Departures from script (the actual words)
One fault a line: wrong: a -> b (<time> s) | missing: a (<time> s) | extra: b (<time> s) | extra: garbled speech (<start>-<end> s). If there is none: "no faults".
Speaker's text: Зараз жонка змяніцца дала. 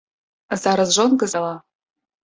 missing: змяніцца (1.3 s)